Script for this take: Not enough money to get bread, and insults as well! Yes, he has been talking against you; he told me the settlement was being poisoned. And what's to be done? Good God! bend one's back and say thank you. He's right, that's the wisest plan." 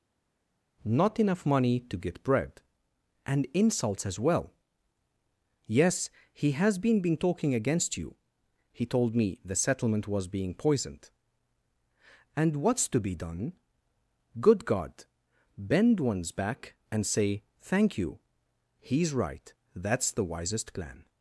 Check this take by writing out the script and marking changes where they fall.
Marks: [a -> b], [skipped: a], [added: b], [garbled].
Not enough money to get bread, and insults as well! Yes, he has been [added: been] talking against you; he told me the settlement was being poisoned. And what's to be done? Good God! bend one's back and say thank you. He's right, that's the wisest plan."